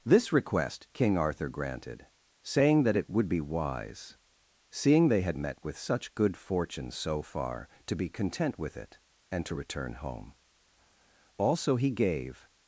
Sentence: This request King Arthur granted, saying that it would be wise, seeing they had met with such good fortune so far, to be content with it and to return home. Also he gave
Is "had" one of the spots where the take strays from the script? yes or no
no